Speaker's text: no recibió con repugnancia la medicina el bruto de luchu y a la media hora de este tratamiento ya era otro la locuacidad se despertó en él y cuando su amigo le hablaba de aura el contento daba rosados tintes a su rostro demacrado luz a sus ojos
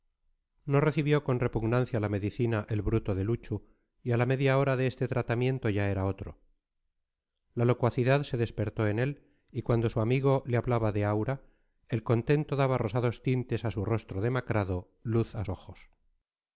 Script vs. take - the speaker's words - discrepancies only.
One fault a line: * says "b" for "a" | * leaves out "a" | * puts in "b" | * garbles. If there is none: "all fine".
* leaves out "sus"